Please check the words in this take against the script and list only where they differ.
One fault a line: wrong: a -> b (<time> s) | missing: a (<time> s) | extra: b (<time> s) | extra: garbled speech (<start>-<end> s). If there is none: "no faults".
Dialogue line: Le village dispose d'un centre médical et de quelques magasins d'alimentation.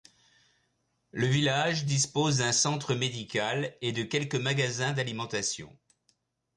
no faults